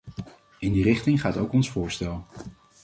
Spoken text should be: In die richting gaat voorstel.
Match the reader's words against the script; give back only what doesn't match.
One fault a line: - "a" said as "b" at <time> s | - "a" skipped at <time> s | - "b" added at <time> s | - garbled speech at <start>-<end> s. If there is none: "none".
- "ook ons" added at 1.4 s